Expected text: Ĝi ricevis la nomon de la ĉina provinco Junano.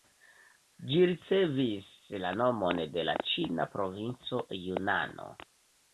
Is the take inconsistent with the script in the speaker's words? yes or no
no